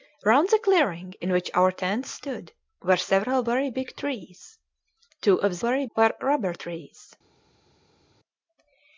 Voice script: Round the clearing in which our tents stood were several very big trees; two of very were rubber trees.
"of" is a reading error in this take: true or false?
false